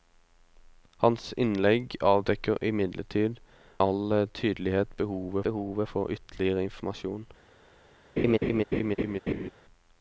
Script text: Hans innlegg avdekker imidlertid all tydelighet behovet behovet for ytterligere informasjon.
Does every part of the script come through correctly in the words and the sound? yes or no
no